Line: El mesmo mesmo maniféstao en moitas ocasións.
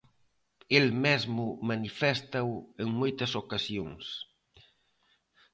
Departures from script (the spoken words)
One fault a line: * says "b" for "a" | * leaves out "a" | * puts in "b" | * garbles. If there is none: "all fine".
* leaves out "mesmo"